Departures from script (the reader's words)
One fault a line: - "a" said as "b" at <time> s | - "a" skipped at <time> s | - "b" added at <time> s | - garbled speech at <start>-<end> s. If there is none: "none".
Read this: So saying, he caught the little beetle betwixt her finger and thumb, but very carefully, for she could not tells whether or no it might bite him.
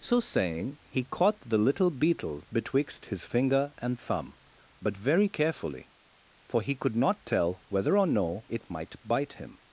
- "her" said as "his" at 3.1 s
- "she" said as "he" at 6.6 s
- "tells" said as "tell" at 7.2 s